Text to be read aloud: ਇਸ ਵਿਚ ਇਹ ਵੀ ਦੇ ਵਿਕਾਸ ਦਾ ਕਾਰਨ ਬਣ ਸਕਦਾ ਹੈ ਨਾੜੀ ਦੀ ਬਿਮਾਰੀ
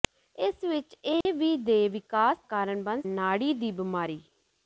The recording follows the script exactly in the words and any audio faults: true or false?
false